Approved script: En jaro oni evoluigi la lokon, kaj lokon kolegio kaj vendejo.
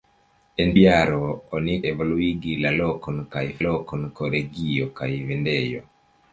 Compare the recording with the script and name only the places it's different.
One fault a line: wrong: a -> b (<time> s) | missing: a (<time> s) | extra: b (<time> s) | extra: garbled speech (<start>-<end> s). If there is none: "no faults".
no faults